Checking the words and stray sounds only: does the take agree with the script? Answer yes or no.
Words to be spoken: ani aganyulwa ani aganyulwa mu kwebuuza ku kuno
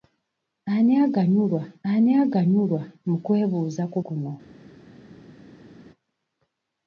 yes